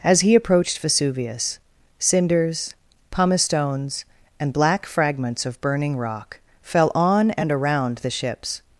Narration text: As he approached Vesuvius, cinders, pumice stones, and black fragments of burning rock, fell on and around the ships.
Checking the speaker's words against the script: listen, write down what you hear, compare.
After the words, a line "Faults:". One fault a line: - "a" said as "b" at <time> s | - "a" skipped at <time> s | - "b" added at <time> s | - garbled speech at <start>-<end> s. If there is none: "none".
As he approached Vesuvius, cinders, pumice stones, and black fragments of burning rock, fell on and around the ships.
Faults:
none